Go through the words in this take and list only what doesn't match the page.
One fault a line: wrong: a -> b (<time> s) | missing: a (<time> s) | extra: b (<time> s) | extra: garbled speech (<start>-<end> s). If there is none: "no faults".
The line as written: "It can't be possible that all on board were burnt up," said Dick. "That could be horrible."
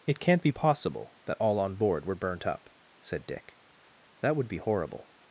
wrong: could -> would (4.4 s)